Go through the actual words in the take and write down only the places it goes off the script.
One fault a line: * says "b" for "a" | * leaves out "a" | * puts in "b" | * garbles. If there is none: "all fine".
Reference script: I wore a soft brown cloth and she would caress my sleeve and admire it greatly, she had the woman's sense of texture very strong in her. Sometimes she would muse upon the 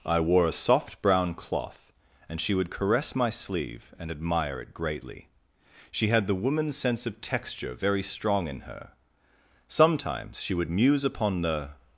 all fine